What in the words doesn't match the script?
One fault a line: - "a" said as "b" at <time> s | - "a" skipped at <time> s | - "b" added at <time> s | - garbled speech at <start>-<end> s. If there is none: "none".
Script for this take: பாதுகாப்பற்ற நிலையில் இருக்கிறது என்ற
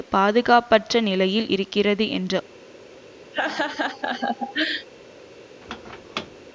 none